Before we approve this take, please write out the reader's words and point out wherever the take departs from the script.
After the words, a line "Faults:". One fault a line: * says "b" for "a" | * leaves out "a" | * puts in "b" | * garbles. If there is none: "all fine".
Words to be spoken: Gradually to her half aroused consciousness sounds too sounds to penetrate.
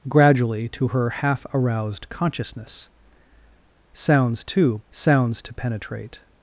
Gradually to her half aroused consciousness sounds too sounds to penetrate.
Faults:
all fine